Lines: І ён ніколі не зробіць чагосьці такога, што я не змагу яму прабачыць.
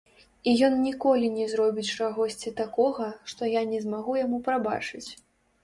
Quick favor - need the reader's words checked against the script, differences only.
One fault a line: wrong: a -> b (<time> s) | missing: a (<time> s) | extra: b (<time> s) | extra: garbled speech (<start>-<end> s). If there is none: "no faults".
no faults